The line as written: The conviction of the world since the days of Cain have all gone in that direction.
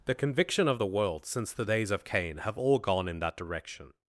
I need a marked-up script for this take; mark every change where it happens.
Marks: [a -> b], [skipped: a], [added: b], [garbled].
The conviction of the world since the days of Cain have all gone in that direction.